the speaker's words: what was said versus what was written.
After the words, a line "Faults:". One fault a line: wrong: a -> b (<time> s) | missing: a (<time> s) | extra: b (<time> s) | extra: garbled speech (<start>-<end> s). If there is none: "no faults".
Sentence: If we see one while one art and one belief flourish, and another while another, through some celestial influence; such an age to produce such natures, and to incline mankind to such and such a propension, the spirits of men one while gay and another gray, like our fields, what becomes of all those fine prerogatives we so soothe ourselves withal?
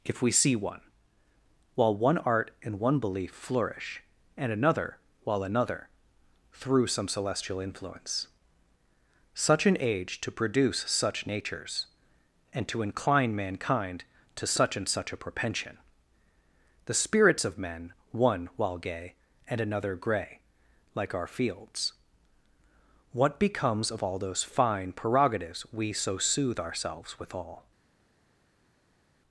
If we see one while one art and one belief flourish, and another while another, through some celestial influence; such an age to produce such natures, and to incline mankind to such and such a propension, the spirits of men one while gay and another gray, like our fields, what becomes of all those fine prerogatives we so soothe ourselves withal?
Faults:
no faults